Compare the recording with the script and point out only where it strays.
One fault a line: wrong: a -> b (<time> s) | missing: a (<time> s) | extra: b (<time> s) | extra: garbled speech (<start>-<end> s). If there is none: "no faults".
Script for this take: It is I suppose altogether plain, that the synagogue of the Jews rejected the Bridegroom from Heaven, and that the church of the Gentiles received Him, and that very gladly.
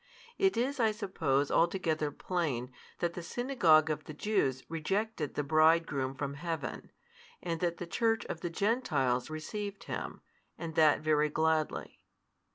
no faults